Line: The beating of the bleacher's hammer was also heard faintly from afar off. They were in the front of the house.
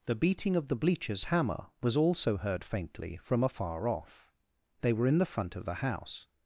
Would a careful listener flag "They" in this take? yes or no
no